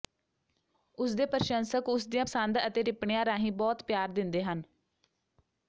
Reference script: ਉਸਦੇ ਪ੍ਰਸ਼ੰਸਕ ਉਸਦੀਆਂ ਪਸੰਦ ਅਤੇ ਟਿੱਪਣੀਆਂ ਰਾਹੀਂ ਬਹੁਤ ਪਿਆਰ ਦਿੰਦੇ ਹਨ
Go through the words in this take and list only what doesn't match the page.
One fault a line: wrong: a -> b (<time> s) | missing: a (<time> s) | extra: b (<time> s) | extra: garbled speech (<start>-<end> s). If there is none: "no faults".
no faults